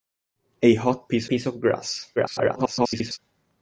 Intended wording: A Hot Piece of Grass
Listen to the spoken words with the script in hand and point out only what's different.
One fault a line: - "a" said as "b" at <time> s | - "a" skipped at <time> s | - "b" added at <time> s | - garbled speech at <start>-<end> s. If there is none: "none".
- "Piece" added at 1.3 s
- garbled speech at 2.2-3.2 s